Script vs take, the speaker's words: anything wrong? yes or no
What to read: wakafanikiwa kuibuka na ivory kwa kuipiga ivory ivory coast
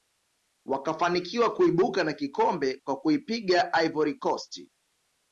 yes